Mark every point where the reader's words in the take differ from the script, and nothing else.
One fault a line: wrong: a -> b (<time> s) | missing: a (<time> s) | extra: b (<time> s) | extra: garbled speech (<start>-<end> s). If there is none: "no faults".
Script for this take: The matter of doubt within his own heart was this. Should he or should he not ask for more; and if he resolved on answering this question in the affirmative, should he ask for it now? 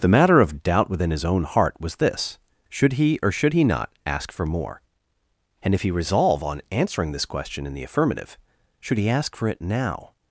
wrong: resolved -> resolve (5.9 s)